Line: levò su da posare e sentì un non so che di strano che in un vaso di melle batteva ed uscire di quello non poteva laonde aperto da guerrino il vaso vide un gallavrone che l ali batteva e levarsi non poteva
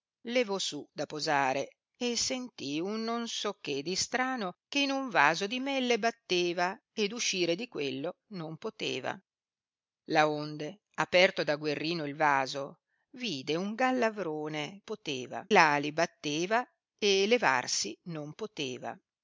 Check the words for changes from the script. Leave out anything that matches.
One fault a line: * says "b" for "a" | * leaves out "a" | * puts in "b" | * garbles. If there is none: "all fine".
* says "poteva" for "che"